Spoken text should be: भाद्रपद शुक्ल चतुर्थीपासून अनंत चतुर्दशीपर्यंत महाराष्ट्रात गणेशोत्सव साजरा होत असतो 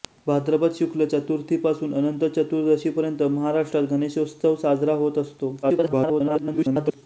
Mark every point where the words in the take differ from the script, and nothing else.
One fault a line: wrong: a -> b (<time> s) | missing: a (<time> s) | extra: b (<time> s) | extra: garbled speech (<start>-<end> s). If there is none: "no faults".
extra: garbled speech (5.6-7.0 s)